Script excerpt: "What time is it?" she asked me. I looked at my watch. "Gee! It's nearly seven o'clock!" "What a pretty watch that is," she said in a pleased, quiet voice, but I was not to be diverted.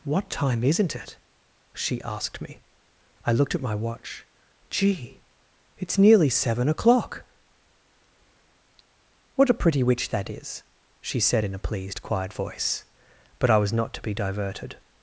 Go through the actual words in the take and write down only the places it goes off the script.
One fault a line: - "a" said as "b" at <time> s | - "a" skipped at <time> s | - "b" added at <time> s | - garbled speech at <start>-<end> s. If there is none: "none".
- "is" said as "isn't" at 0.6 s
- "watch" said as "witch" at 9.8 s